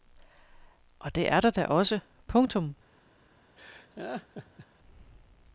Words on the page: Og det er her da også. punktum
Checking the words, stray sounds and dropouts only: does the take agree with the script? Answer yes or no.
no